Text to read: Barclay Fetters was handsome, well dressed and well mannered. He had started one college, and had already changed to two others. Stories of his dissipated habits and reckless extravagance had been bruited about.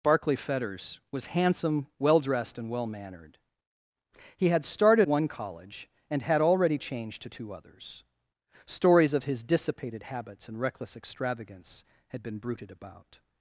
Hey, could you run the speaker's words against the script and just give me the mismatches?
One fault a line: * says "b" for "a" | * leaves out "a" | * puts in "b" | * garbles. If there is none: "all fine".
all fine